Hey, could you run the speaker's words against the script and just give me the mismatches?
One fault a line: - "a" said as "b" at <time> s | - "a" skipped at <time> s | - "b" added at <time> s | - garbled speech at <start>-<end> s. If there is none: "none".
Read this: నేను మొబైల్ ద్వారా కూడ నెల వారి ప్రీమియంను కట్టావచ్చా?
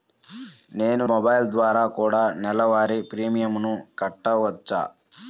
none